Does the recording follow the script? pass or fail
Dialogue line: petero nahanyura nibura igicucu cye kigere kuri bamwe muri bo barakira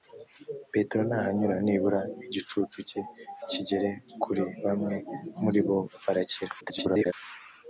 fail